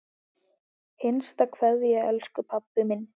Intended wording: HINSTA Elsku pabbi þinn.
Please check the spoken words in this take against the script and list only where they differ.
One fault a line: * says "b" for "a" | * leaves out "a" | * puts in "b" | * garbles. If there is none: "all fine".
* puts in "KVEÐJA"
* says "minn" for "þinn"